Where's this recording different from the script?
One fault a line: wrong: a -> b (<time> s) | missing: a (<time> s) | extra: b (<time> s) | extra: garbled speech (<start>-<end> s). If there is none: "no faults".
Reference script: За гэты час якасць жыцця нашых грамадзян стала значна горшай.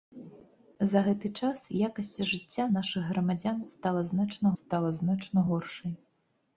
extra: стала значна (4.6 s)